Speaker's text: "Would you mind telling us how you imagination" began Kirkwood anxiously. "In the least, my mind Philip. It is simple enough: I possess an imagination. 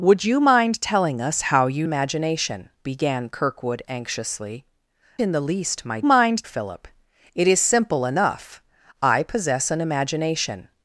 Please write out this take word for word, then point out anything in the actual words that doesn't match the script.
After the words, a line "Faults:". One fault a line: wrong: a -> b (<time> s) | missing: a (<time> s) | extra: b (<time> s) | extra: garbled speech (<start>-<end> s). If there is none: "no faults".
"Would you mind telling us how you imagination" began Kirkwood anxiously. "In the least, my mind Philip. It is simple enough: I possess an imagination.
Faults:
no faults